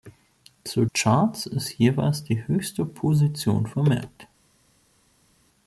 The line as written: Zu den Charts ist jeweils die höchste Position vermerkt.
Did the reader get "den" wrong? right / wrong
wrong